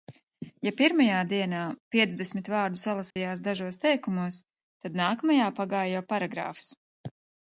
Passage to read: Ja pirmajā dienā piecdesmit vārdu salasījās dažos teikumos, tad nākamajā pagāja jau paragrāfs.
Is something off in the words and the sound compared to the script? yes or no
yes